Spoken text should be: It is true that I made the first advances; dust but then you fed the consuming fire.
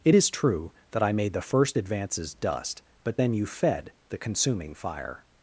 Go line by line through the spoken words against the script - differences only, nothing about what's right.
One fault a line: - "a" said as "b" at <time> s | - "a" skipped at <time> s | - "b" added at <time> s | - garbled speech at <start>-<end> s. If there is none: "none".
none